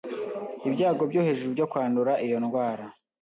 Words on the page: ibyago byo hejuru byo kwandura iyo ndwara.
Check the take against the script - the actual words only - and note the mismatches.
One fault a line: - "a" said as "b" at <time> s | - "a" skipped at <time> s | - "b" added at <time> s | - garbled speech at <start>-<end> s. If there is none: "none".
none